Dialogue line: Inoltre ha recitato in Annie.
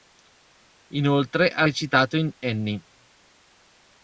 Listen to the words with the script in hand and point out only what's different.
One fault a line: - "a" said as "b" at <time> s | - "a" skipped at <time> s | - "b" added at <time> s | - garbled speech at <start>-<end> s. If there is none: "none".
none